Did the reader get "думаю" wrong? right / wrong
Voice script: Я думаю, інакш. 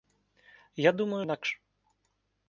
right